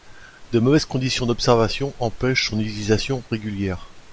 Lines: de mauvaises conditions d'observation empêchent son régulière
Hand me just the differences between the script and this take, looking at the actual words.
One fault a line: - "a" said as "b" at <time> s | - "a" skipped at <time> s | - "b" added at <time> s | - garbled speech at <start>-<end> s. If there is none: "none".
- "utilisation" added at 2.6 s